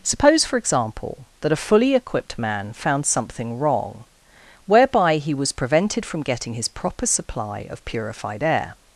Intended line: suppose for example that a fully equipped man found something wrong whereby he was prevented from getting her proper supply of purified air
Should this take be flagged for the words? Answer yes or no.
yes